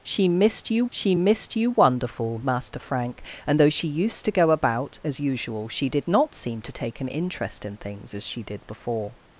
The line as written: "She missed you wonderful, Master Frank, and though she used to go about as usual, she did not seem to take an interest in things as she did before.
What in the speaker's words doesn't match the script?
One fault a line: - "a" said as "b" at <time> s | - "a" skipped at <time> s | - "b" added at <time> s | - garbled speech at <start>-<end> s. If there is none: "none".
- "she missed you" added at 0.9 s